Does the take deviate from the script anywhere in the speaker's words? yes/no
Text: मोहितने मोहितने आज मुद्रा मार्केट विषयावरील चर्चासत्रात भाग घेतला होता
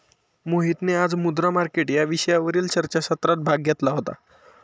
yes